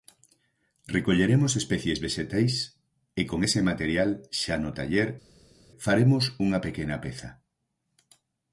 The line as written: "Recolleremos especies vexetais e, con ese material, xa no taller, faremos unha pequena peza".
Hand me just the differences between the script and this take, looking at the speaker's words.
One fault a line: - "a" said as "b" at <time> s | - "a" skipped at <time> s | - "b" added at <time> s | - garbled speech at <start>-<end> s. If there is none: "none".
none